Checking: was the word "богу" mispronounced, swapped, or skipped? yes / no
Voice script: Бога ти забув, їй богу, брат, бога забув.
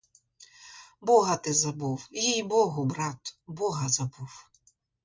no